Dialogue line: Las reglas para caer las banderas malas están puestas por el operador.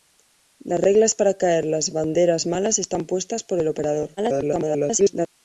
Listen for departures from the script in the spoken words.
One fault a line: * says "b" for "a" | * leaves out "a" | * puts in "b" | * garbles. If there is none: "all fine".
* garbles